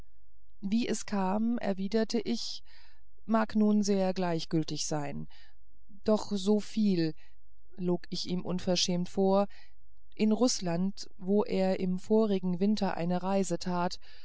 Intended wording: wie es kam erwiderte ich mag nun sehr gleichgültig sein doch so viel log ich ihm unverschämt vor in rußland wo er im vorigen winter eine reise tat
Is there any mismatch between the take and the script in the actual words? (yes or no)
no